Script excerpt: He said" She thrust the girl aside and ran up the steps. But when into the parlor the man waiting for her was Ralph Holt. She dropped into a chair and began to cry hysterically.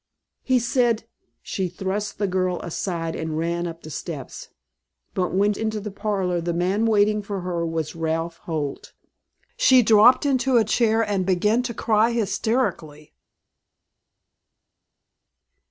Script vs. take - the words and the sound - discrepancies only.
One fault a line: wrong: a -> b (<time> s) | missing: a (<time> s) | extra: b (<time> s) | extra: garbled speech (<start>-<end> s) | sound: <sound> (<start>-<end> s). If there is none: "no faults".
no faults